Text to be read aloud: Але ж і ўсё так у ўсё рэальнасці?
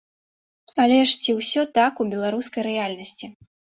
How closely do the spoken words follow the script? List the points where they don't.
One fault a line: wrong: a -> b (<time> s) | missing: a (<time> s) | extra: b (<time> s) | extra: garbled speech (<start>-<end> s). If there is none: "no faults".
wrong: і -> ці (1.2 s)
wrong: ўсё -> беларускай (2.2 s)